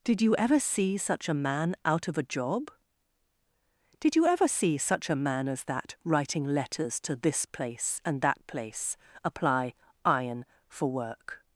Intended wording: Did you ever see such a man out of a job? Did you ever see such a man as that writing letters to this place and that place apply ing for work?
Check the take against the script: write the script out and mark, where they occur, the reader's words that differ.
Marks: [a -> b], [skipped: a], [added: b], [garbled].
Did you ever see such a man out of a job? Did you ever see such a man as that writing letters to this place and that place apply [ing -> iron] for work?